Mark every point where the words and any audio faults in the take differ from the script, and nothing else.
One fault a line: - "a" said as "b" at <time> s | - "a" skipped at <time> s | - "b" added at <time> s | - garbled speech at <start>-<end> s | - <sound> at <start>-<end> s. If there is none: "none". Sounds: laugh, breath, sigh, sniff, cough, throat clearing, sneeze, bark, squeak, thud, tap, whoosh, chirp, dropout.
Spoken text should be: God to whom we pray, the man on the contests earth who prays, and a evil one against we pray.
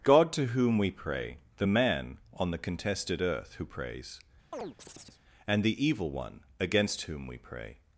- "contests" said as "contested" at 2.6 s
- chirp at 4.5-5.2 s
- "a" said as "the" at 5.6 s
- "whom" added at 7.0 s